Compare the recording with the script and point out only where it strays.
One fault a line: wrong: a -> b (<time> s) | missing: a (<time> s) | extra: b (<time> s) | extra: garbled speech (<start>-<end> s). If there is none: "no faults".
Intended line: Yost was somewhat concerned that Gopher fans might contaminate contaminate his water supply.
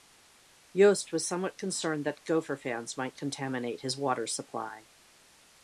missing: contaminate (3.8 s)